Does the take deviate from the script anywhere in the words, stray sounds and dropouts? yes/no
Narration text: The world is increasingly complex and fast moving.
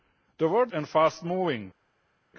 yes